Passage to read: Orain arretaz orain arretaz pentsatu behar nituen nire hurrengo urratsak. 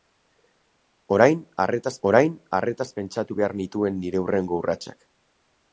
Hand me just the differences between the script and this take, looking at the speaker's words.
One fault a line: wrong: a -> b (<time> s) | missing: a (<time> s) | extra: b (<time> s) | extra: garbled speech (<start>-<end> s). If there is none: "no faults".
no faults